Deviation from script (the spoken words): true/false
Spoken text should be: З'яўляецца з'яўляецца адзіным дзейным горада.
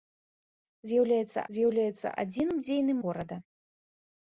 false